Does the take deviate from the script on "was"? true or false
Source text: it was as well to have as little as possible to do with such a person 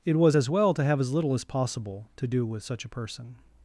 false